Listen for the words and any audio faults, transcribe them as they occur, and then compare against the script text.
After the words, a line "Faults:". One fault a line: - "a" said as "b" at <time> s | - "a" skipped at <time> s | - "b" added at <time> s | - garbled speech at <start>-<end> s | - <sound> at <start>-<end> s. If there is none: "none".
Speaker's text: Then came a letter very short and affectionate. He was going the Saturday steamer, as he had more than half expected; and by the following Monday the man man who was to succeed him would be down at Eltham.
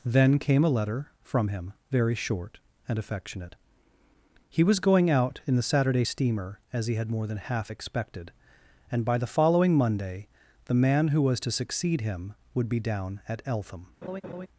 Then came a letter from him, very short and affectionate. He was going out in the Saturday steamer, as he had more than half expected; and by the following Monday the man who was to succeed him would be down at Eltham.
Faults:
- "from him" added at 1.2 s
- "out in" added at 5.1 s
- "man" skipped at 11.1 s
- laugh at 14.0-14.5 s